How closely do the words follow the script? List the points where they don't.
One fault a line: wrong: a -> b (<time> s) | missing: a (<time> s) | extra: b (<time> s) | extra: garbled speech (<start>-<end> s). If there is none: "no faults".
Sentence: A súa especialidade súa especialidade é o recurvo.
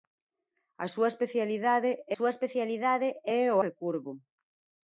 no faults